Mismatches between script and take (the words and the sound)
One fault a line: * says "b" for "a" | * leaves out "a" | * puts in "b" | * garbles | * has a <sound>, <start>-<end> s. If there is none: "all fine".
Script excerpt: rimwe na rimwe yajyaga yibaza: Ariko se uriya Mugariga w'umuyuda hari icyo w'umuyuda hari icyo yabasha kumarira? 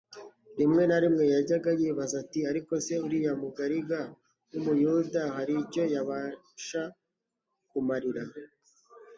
* puts in "ati"
* leaves out "w'umuyuda hari icyo"